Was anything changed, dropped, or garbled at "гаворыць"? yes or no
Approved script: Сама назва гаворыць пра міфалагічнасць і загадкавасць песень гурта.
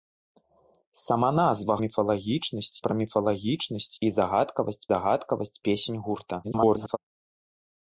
yes